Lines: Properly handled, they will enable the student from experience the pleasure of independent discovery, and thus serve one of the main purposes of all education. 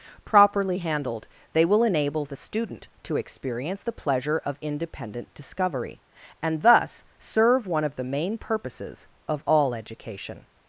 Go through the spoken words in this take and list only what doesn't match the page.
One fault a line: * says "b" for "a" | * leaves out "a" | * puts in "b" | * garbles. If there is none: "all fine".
* says "to" for "from"